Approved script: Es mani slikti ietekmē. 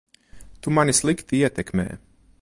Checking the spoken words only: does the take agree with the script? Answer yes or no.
no